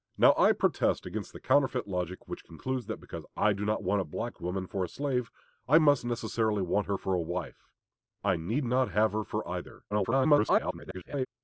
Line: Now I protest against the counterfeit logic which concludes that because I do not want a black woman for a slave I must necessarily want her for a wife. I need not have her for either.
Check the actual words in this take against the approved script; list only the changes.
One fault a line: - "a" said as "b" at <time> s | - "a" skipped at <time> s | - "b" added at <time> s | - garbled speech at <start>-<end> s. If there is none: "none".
- garbled speech at 9.9-11.3 s